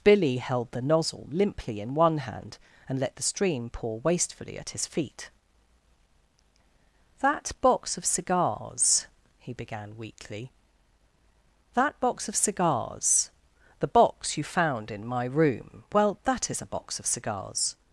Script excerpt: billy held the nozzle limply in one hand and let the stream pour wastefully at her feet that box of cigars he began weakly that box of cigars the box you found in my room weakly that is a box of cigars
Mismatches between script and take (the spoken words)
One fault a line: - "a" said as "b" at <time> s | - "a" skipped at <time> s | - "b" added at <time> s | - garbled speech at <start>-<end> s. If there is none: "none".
- "her" said as "his" at 4.7 s
- "weakly" said as "well" at 15.9 s